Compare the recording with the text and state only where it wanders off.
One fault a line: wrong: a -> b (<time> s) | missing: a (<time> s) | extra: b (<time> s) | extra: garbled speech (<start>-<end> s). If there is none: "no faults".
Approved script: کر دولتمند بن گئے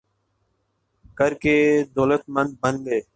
extra: کے (1.4 s)